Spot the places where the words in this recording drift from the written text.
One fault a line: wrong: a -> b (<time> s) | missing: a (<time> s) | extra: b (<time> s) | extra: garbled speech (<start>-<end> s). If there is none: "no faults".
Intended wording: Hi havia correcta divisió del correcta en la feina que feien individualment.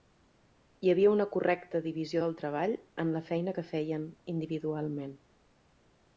extra: una (1.1 s)
wrong: correcta -> treball (2.4 s)